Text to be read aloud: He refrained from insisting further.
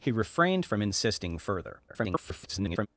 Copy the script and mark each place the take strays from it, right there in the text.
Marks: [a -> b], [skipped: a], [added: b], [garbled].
He refrained from insisting further. [garbled]